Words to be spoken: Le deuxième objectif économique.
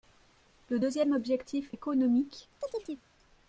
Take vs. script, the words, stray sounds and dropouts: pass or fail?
fail